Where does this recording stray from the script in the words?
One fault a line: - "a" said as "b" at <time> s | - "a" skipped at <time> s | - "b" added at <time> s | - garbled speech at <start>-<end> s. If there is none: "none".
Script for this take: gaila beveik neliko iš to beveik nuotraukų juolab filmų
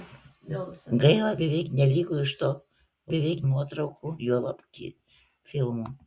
none